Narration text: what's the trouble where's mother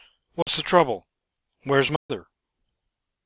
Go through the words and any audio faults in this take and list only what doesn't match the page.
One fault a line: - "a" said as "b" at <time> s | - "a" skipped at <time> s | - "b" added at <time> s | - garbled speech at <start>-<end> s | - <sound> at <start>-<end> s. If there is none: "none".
- dropout at 0.4-0.5 s
- dropout at 2.0-2.1 s